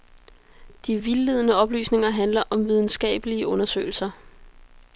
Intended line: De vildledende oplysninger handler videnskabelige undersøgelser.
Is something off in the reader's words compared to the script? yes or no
yes